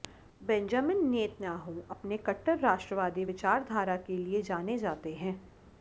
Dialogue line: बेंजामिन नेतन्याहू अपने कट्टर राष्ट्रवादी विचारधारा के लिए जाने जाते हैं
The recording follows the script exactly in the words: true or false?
true